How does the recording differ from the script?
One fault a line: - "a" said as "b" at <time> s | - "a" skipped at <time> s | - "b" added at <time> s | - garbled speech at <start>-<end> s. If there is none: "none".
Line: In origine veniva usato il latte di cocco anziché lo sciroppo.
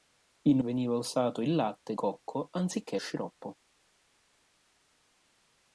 - "origine" skipped at 0.6 s
- "di" skipped at 2.0 s
- "lo" skipped at 3.0 s